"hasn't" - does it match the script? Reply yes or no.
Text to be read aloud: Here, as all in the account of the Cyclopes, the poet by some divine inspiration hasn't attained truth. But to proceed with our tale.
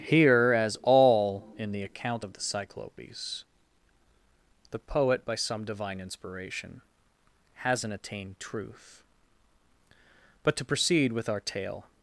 yes